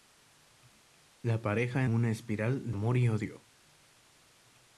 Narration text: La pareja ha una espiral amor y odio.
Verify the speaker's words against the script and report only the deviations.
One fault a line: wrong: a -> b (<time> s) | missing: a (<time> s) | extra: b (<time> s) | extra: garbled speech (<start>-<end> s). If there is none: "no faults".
no faults